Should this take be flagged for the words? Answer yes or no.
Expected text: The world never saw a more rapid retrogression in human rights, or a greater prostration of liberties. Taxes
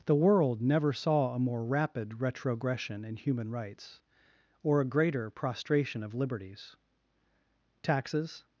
no